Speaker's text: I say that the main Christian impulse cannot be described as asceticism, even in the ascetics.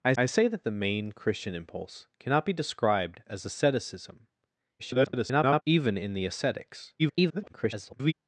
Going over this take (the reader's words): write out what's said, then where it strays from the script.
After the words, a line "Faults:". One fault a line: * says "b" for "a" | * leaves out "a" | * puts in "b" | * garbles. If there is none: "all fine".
I I say that the main Christian impulse cannot be described as asceticism, [garbled] even in the ascetics. [garbled]
Faults:
* puts in "I"
* garbles
* garbles